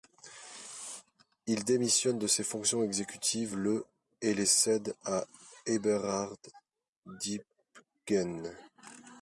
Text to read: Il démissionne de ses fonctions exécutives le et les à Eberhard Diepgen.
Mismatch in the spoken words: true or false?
true